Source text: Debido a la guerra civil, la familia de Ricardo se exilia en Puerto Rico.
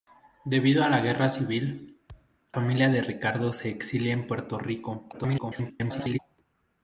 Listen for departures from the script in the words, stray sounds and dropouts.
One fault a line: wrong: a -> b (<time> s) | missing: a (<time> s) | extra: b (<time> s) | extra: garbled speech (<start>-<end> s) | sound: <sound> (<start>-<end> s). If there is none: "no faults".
missing: la (2.0 s)
sound: thud (2.1-2.4 s)
extra: garbled speech (5.1-6.2 s)